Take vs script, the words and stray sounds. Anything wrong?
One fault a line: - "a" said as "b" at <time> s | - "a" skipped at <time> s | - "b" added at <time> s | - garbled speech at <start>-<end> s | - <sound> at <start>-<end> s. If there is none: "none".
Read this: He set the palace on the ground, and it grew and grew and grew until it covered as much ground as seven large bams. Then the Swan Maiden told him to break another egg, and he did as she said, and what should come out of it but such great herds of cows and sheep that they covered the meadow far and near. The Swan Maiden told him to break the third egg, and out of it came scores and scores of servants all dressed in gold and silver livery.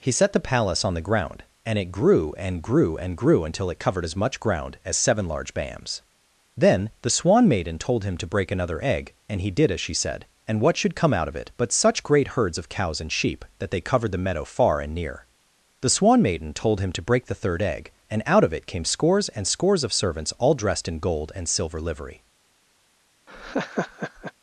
- laugh at 23.3-24.3 s